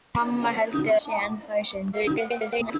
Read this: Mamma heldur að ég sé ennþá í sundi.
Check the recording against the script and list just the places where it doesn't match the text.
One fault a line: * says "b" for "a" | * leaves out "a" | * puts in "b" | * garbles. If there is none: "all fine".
* leaves out "að ég"
* garbles